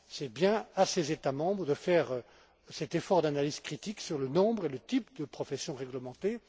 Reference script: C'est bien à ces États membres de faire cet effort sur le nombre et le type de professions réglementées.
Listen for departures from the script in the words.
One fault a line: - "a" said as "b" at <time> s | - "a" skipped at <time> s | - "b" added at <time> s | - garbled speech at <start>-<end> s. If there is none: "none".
- "d'analyse critique" added at 3.2 s